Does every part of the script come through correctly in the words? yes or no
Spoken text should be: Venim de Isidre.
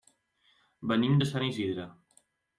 no